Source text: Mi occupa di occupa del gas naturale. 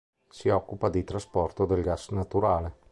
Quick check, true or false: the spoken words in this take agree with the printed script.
false